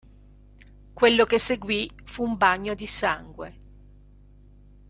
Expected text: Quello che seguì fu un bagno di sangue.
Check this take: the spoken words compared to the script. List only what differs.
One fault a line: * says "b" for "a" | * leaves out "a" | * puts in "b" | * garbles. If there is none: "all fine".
all fine